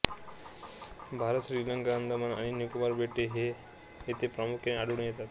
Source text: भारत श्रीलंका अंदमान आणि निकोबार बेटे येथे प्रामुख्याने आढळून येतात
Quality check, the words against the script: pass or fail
pass